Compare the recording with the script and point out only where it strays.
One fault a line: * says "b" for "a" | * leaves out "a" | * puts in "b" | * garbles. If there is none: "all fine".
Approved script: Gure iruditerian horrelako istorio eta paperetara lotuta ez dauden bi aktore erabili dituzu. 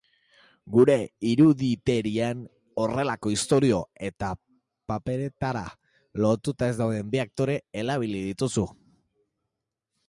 all fine